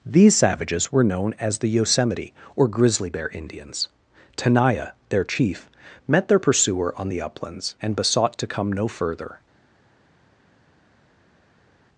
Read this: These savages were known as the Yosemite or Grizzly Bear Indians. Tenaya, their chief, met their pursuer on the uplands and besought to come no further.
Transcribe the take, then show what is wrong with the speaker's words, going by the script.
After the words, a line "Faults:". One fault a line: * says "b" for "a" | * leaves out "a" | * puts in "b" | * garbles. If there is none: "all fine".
These savages were known as the Yosemite or Grizzly Bear Indians. Tenaya, their chief, met their pursuer on the uplands and besought to come no further.
Faults:
all fine